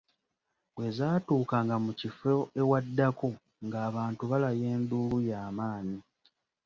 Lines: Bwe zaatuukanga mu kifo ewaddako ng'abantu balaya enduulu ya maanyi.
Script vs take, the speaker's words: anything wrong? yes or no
no